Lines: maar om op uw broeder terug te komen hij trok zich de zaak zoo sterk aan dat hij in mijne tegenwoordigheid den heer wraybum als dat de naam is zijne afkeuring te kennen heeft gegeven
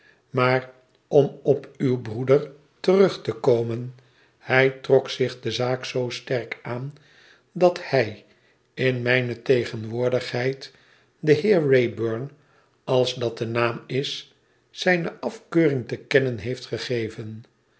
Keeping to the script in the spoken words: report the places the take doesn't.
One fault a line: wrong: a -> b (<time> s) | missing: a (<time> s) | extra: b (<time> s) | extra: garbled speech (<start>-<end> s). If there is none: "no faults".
no faults